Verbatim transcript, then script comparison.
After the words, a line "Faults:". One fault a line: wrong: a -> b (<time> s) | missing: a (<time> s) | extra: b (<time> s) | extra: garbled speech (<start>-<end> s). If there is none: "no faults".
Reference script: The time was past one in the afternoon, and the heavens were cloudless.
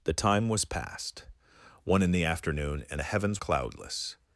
The time was past one in the afternoon, and the heavens cloudless.
Faults:
missing: were (3.4 s)